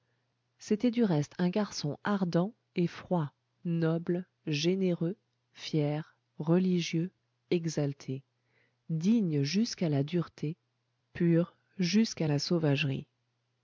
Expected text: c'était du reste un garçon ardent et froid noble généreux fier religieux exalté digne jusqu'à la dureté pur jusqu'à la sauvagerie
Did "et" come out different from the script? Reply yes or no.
no